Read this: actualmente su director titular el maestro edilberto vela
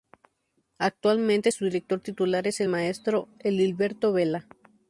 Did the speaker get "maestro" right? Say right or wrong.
right